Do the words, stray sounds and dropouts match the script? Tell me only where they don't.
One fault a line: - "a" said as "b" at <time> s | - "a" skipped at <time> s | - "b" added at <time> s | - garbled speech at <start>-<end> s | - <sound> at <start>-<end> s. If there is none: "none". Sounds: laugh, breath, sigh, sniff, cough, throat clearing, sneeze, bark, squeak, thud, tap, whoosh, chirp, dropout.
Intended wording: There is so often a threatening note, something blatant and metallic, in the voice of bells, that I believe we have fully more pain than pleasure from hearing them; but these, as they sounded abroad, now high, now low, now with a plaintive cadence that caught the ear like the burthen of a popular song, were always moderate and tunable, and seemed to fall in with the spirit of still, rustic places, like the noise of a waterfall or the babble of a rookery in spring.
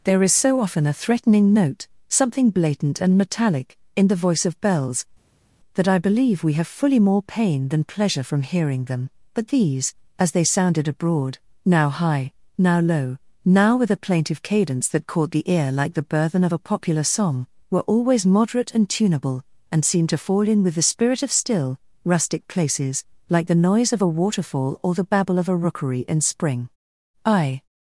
- "I" added at 27.2 s